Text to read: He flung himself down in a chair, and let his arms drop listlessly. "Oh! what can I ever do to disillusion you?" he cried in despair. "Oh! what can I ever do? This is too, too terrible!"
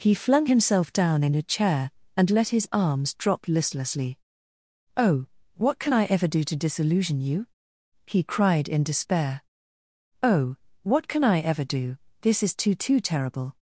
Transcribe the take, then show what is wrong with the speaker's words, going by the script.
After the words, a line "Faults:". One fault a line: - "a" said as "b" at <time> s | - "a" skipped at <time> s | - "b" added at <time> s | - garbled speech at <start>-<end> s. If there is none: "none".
He flung himself down in a chair, and let his arms drop listlessly. "Oh! what can I ever do to disillusion you?" he cried in despair. "Oh! what can I ever do? This is too, too terrible!"
Faults:
none